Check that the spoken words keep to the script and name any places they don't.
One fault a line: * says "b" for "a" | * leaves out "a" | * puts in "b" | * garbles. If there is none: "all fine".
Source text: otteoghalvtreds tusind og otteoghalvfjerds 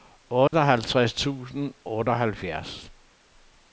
* leaves out "og"